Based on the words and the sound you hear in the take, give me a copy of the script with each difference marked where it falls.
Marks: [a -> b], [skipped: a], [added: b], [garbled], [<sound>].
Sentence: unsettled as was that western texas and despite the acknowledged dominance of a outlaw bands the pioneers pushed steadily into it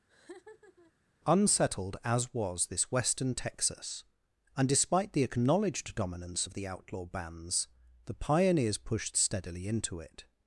[laugh] unsettled as was [that -> this] western texas and despite the acknowledged dominance of [a -> the] outlaw bands the pioneers pushed steadily into it